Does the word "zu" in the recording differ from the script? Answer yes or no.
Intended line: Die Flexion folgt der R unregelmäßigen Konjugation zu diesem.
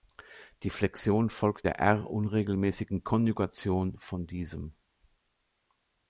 yes